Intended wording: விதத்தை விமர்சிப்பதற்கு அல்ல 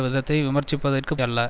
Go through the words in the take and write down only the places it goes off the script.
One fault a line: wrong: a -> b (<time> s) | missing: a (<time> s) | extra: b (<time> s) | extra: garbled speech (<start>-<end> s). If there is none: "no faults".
no faults